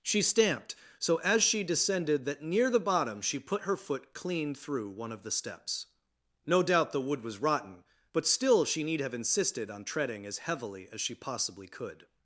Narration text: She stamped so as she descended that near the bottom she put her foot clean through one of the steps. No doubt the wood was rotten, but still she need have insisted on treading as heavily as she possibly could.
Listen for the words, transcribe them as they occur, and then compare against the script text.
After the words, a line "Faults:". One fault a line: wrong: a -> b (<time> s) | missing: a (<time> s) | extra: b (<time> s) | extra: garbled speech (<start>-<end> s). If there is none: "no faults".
She stamped so as she descended that near the bottom she put her foot clean through one of the steps. No doubt the wood was rotten, but still she need have insisted on treading as heavily as she possibly could.
Faults:
no faults